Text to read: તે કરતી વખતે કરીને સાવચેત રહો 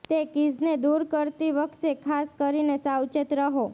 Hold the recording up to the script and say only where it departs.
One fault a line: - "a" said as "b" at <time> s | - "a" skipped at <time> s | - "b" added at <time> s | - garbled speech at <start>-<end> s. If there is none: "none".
- "કીઝને દૂર" added at 0.3 s
- "ખાસ" added at 2.0 s